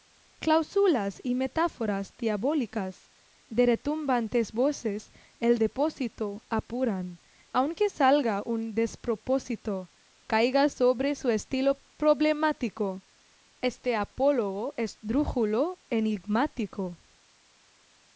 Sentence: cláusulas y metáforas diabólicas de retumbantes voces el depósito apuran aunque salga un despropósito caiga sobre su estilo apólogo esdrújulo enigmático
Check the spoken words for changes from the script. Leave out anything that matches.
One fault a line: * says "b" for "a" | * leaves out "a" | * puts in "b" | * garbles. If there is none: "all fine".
* puts in "problemático este"